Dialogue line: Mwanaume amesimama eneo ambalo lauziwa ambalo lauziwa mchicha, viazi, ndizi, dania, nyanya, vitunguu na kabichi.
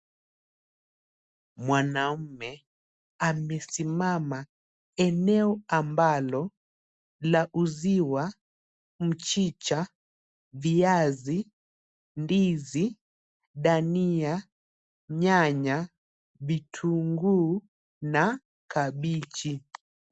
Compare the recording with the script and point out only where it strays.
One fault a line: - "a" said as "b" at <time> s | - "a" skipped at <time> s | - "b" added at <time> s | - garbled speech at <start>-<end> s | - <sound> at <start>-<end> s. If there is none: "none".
- "ambalo lauziwa" skipped at 8.3 s